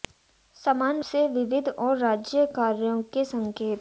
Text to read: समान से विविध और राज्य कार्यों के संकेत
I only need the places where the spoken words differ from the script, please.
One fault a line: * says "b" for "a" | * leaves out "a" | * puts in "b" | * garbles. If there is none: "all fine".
all fine